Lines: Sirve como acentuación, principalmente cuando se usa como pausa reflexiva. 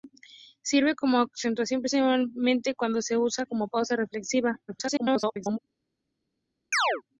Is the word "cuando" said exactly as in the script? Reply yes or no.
yes